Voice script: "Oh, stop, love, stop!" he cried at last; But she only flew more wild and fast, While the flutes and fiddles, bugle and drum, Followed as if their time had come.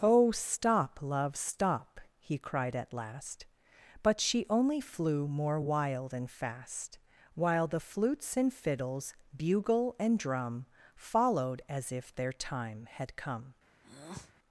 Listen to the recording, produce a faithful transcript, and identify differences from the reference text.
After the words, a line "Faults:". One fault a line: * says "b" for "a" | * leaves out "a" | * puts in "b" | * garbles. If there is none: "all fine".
"Oh, stop, love, stop!" he cried at last; But she only flew more wild and fast, While the flutes and fiddles, bugle and drum, Followed as if their time had come.
Faults:
all fine